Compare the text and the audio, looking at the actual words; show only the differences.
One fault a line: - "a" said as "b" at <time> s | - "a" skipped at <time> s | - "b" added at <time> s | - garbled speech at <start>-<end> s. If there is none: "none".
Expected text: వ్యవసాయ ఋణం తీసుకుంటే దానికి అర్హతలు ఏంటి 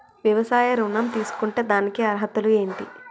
none